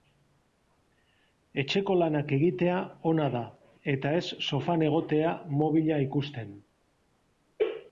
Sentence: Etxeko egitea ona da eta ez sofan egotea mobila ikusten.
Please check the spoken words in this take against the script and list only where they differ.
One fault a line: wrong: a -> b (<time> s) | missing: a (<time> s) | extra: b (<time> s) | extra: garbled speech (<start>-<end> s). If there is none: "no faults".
extra: lanak (2.0 s)